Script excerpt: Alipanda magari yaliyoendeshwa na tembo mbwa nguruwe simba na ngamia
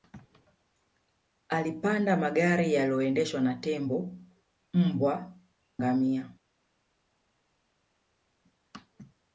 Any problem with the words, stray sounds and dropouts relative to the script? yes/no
yes